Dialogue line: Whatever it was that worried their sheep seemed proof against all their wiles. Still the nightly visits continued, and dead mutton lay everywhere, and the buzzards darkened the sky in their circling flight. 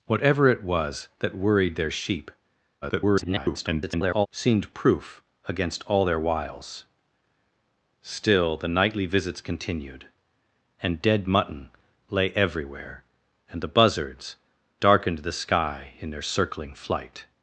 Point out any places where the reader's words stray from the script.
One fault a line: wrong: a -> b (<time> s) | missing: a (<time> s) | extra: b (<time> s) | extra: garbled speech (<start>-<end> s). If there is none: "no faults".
extra: garbled speech (2.8-4.3 s)